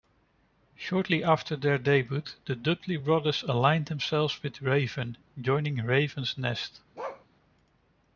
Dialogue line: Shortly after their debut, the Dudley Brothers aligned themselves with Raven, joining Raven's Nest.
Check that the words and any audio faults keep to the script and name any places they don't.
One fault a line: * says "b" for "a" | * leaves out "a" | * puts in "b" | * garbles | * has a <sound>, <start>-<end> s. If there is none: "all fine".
* has a bark, 7.0-7.3 s